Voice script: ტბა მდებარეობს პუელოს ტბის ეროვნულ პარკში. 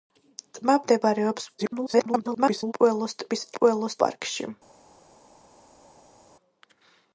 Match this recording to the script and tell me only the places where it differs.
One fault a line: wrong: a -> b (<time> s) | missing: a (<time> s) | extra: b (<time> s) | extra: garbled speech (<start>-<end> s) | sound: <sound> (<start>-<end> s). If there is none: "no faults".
extra: garbled speech (1.6-2.7 s)
wrong: ეროვნულ -> პუელოს (3.6 s)